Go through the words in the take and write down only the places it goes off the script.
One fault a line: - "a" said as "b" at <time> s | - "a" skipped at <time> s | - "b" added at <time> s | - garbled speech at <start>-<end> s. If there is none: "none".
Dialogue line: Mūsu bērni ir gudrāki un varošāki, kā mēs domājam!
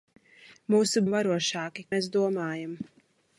- "bērni ir gudrāki" skipped at 1.0 s
- "kā" skipped at 1.9 s